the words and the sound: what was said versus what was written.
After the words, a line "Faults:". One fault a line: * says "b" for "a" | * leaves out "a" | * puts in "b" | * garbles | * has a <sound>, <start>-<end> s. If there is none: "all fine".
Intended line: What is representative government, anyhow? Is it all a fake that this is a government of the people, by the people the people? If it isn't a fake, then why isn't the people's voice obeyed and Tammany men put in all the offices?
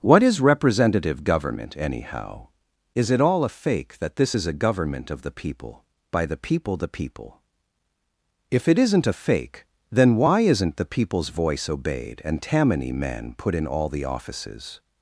What is representative government, anyhow? Is it all a fake that this is a government of the people, by the people the people? If it isn't a fake, then why isn't the people's voice obeyed and Tammany men put in all the offices?
Faults:
all fine